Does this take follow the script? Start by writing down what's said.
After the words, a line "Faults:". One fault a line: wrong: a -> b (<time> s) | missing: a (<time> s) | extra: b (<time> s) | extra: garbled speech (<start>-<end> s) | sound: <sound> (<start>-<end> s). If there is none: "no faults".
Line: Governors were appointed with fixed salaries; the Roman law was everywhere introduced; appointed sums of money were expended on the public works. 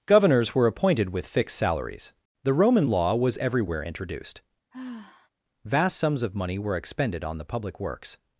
Governors were appointed with fixed salaries; the Roman law was everywhere introduced; vast sums of money were expended on the public works.
Faults:
sound: sigh (4.7-5.3 s)
wrong: appointed -> vast (5.6 s)